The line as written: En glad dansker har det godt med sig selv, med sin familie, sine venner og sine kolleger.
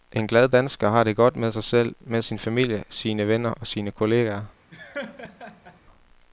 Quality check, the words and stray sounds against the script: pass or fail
fail